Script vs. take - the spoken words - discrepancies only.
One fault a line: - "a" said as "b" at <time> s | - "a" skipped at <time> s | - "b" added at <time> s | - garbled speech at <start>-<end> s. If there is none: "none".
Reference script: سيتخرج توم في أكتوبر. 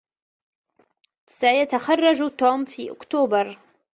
none